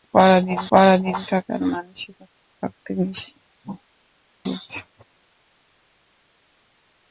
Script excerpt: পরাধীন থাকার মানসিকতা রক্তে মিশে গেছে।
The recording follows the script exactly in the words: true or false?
false